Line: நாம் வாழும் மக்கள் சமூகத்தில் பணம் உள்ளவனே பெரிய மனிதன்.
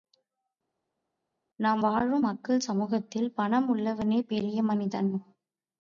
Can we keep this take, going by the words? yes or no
yes